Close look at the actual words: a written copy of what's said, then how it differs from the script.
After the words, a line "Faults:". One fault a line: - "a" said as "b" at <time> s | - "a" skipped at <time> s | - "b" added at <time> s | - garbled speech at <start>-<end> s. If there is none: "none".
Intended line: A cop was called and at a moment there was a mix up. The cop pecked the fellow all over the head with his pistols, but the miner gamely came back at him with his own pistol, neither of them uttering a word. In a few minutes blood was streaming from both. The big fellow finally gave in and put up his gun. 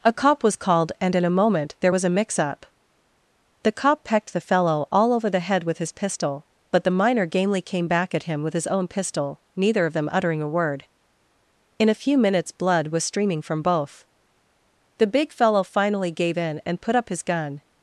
A cop was called and in a moment there was a mix up. The cop pecked the fellow all over the head with his pistol, but the miner gamely came back at him with his own pistol, neither of them uttering a word. In a few minutes blood was streaming from both. The big fellow finally gave in and put up his gun.
Faults:
- "at" said as "in" at 1.1 s
- "pistols" said as "pistol" at 5.9 s